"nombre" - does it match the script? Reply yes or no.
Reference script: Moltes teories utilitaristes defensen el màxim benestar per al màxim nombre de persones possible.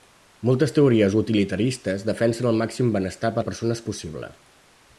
no